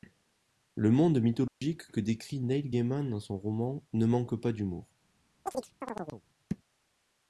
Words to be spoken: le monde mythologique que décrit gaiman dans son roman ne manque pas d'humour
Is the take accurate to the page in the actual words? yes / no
no